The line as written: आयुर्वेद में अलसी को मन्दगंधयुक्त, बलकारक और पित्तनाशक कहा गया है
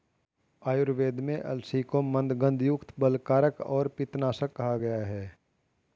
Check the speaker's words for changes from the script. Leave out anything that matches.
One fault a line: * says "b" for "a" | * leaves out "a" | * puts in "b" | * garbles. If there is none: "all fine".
all fine